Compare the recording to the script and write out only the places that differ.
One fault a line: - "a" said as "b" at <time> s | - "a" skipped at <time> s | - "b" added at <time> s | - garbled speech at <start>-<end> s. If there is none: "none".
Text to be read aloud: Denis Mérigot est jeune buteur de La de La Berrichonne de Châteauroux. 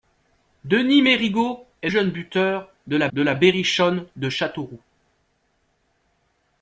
none